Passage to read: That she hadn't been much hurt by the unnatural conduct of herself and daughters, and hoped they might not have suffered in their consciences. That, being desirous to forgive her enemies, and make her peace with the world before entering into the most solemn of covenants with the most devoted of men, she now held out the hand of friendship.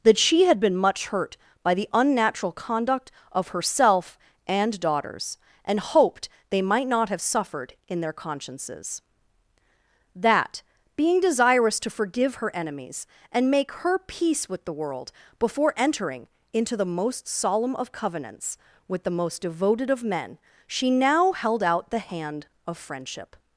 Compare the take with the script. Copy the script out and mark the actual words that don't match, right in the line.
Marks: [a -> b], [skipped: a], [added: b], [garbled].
That she [hadn't -> had] been much hurt by the unnatural conduct of herself and daughters, and hoped they might not have suffered in their consciences. That, being desirous to forgive her enemies, and make her peace with the world before entering into the most solemn of covenants with the most devoted of men, she now held out the hand of friendship.